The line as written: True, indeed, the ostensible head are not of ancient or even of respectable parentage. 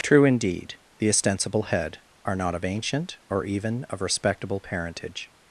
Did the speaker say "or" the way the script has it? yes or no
yes